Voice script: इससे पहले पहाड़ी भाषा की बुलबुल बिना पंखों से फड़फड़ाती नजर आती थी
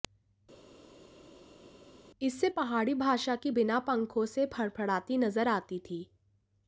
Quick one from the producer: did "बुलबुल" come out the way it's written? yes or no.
no